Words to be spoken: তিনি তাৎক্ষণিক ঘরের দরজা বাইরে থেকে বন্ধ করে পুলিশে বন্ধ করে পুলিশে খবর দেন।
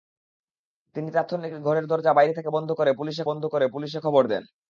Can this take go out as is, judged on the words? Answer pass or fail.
pass